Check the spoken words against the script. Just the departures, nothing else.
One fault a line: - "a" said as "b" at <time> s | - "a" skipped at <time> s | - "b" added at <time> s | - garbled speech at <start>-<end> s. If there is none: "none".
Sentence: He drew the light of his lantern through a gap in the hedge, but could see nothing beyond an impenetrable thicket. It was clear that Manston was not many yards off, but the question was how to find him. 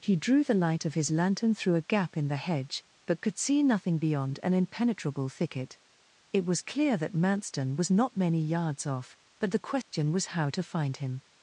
none